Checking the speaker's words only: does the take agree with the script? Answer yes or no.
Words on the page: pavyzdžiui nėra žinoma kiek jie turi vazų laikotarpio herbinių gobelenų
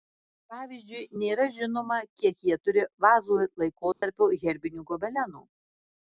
yes